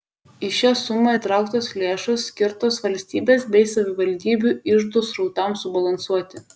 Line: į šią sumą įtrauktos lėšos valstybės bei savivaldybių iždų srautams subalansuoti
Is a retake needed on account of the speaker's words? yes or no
yes